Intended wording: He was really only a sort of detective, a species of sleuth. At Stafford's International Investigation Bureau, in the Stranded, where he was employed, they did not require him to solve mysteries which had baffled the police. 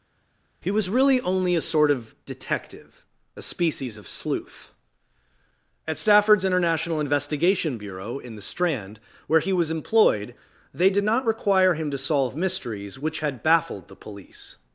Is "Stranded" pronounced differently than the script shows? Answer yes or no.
yes